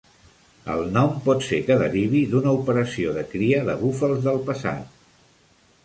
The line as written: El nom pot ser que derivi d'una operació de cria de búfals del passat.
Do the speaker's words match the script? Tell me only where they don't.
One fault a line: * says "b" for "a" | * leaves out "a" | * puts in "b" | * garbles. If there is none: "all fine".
all fine